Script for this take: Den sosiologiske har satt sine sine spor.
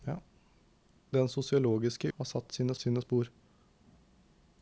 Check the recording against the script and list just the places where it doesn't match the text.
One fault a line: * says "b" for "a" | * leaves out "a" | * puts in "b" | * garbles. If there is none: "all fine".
all fine